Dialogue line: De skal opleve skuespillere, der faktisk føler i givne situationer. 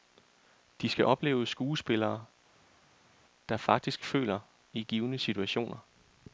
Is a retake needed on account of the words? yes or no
no